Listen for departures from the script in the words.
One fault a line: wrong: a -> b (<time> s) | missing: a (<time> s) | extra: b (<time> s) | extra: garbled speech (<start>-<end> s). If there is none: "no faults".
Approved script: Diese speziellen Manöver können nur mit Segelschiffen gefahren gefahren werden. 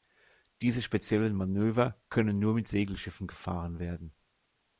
missing: gefahren (3.8 s)